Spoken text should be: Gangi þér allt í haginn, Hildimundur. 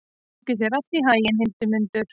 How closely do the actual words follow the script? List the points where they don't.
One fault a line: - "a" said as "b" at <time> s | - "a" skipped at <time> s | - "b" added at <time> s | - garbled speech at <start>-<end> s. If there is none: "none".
none